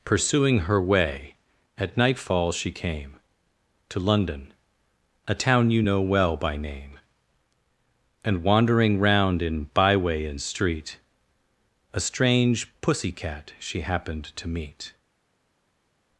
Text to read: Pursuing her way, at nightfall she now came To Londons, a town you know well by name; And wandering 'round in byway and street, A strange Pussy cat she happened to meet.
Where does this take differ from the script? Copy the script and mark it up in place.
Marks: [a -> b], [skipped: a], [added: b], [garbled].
Pursuing her way, at nightfall she [skipped: now] came To [Londons, -> London] a town you know well by name; And wandering 'round in byway and street, A strange Pussy cat she happened to meet.